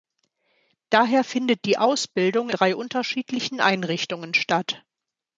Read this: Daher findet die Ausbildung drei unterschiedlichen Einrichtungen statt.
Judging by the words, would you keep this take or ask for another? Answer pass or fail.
pass